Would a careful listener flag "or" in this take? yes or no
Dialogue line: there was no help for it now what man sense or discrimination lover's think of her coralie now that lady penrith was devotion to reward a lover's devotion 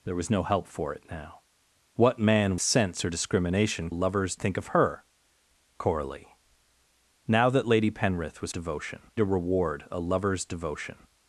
no